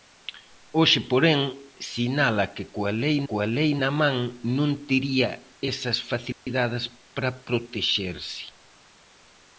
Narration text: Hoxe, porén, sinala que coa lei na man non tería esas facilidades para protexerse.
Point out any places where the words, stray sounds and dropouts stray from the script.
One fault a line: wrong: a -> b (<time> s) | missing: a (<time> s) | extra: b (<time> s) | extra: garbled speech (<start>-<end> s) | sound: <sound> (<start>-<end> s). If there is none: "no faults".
extra: coa lei (3.3 s)
sound: dropout (6.3-6.5 s)